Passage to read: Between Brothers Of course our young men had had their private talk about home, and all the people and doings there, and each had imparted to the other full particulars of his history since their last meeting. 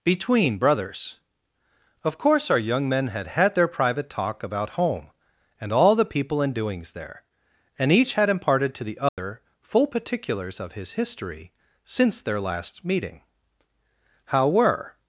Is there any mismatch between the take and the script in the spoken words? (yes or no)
yes